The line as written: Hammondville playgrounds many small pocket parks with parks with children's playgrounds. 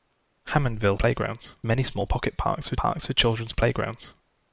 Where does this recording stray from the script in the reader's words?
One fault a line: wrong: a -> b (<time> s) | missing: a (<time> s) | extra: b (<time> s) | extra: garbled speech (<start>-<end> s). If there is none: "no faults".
no faults